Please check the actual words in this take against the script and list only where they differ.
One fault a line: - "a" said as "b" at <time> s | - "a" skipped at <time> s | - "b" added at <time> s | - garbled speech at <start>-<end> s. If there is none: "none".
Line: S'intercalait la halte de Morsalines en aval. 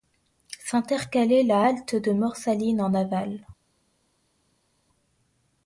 none